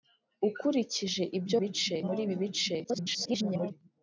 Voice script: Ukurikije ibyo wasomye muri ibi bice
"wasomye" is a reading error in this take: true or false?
true